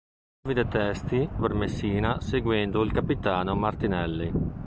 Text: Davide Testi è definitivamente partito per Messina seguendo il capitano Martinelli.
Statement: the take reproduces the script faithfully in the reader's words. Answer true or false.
false